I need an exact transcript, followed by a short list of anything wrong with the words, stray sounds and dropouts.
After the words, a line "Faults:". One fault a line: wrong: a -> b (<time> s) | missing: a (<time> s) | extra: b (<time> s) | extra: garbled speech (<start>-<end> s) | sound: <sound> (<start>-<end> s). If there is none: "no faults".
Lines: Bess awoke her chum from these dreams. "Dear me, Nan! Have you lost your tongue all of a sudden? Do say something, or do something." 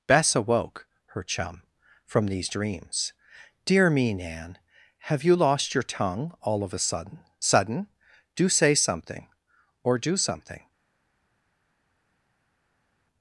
Bess awoke her chum from these dreams. "Dear me, Nan! Have you lost your tongue all of a sudden sudden? Do say something, or do something."
Faults:
extra: sudden (7.4 s)